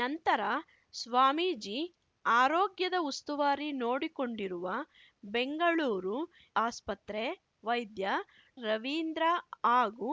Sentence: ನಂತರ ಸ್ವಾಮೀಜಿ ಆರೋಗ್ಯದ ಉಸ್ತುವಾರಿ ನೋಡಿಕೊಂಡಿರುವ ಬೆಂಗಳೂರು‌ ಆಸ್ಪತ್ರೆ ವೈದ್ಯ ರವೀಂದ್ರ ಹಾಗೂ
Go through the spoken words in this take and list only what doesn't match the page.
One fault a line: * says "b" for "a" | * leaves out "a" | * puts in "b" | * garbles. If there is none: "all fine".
all fine